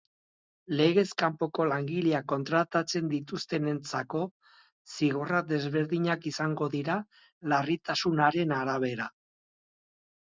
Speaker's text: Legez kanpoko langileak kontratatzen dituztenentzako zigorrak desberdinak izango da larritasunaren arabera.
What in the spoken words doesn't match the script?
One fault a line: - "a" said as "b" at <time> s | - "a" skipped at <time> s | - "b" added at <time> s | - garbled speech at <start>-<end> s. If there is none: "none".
- "da" said as "dira" at 6.7 s